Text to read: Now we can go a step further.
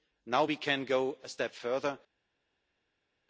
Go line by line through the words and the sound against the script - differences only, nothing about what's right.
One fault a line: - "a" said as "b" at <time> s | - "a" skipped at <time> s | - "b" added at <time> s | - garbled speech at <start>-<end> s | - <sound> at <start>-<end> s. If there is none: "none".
none